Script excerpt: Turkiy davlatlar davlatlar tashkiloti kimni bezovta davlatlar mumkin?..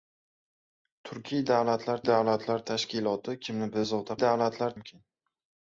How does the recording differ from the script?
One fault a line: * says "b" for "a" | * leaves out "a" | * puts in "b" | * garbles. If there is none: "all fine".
all fine